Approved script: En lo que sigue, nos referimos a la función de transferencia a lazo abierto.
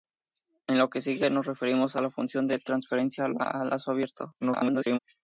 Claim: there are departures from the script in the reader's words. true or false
true